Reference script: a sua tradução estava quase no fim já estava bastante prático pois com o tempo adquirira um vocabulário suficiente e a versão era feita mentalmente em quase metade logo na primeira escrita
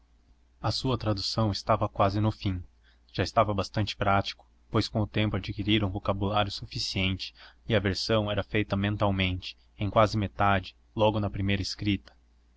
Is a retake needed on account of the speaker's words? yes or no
no